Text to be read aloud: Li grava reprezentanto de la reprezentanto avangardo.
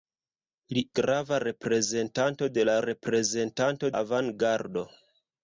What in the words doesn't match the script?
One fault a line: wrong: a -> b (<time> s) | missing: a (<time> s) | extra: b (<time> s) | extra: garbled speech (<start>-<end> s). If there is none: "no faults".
no faults